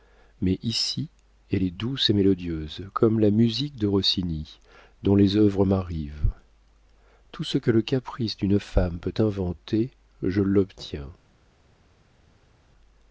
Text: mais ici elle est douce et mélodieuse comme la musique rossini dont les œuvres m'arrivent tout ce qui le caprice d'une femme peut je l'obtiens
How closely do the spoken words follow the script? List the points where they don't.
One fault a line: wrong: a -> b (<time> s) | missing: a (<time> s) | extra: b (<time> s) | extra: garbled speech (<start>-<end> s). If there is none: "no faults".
extra: de (3.8 s)
wrong: qui -> que (7.6 s)
extra: inventer (9.2 s)